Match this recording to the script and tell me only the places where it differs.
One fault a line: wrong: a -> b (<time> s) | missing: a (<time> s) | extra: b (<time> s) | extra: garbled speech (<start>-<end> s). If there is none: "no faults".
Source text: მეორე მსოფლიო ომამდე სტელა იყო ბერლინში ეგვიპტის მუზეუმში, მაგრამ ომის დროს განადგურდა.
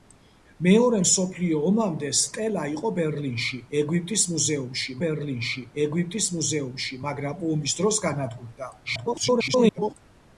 extra: ბერლინში ეგვიპტის მუზეუმში (5.1 s)
extra: garbled speech (8.8-9.9 s)